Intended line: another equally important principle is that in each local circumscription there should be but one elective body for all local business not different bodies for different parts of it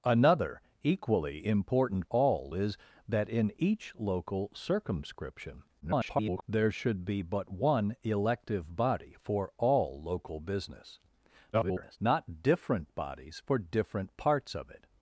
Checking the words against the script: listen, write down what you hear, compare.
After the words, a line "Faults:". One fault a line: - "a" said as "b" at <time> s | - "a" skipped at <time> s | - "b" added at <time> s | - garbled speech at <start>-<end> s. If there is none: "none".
another equally important all is that in each local circumscription [garbled] there should be but one elective body for all local business [garbled] not different bodies for different parts of it
Faults:
- "principle" said as "all" at 2.1 s
- garbled speech at 5.8-6.4 s
- garbled speech at 11.5-12.0 s